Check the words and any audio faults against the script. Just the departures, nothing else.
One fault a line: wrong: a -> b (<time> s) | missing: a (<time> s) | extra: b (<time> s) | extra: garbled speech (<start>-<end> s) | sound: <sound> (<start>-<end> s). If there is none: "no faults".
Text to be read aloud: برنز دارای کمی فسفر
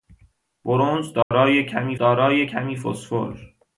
sound: dropout (1.2-1.3 s)
extra: دارای کمی (2.0 s)